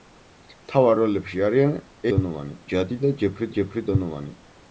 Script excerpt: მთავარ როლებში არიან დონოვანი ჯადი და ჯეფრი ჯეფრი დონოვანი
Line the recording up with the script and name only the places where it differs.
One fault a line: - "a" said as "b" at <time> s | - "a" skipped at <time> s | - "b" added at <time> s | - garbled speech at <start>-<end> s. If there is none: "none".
none